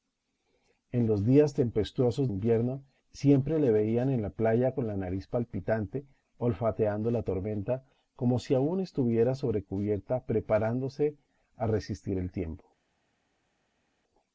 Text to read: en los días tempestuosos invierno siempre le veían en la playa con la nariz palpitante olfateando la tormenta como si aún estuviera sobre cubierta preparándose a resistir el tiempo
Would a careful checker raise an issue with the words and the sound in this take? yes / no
no